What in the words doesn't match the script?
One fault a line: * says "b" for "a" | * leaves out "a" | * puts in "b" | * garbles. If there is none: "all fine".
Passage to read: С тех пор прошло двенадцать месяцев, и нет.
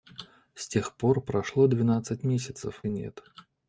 all fine